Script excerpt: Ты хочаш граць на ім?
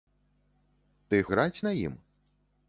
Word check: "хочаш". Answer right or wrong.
wrong